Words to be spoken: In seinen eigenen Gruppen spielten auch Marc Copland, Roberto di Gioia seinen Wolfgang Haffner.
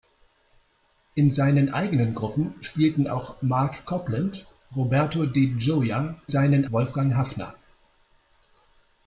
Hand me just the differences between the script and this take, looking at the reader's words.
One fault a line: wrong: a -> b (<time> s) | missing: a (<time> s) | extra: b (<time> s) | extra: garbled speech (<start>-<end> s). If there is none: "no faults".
no faults